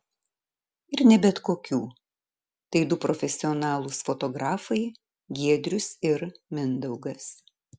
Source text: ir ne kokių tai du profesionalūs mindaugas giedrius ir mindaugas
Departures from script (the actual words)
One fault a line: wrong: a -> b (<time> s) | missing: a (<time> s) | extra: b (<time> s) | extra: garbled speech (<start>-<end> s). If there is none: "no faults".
extra: bet (1.2 s)
wrong: mindaugas -> fotografai (4.1 s)